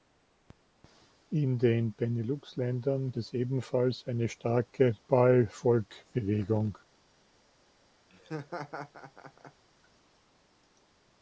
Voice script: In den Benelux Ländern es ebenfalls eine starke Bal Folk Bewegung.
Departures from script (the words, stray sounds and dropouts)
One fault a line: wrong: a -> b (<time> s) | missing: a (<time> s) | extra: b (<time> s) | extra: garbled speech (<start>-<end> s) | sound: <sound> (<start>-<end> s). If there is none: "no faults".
sound: laugh (8.1-9.6 s)